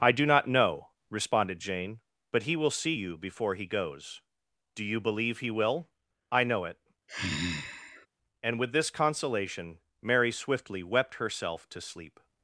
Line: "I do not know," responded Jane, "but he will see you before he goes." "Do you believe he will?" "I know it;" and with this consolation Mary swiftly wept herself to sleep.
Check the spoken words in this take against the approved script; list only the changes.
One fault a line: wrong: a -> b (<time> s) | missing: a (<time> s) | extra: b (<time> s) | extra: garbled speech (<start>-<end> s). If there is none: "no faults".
no faults